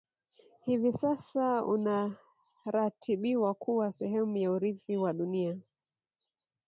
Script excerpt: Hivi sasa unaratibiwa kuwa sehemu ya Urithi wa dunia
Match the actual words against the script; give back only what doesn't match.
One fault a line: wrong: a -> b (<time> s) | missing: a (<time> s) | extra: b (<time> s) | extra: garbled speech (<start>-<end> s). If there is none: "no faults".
no faults